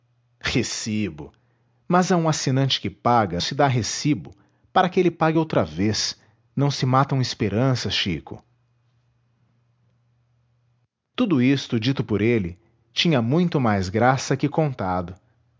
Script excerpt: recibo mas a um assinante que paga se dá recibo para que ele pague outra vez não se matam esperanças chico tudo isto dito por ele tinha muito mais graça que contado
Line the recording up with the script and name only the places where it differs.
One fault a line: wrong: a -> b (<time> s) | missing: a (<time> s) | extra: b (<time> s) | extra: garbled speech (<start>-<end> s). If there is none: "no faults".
no faults